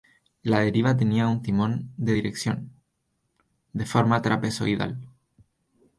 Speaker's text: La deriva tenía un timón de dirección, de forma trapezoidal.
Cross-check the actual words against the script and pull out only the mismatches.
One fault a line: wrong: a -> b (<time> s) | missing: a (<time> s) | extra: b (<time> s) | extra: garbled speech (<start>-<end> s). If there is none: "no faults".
no faults